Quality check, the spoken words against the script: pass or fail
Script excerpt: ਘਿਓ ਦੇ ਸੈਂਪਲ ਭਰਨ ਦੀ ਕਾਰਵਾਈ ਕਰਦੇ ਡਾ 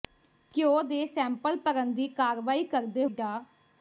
pass